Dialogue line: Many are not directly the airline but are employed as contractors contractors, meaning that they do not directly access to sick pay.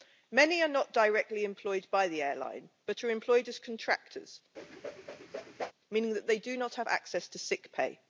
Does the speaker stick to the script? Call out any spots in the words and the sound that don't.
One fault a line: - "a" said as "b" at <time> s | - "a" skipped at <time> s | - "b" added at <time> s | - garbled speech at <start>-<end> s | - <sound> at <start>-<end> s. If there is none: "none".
- "employed by" added at 1.4 s
- "contractors" skipped at 4.4 s
- whoosh at 4.5-5.7 s
- "directly" said as "have" at 6.8 s